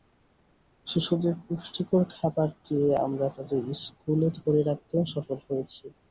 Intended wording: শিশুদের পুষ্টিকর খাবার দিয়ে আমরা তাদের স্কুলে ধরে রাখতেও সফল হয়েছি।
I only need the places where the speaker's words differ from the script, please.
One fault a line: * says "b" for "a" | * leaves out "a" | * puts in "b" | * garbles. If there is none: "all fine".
all fine